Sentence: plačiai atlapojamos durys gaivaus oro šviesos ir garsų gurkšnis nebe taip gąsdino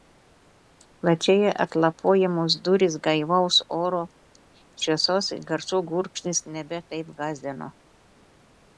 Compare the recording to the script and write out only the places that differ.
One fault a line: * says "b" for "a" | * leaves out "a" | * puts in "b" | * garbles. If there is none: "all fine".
all fine